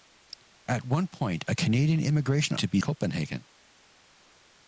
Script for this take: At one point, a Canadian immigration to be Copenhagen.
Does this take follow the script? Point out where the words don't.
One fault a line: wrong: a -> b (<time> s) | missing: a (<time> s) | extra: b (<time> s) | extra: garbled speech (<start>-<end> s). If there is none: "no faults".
no faults